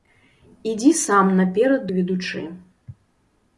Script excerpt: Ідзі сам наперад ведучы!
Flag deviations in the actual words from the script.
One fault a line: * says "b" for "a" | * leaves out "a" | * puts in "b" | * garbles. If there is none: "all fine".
all fine